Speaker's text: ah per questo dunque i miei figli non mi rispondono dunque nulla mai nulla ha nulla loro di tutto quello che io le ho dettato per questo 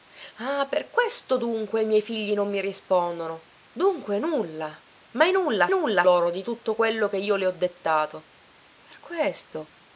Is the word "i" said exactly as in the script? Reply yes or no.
yes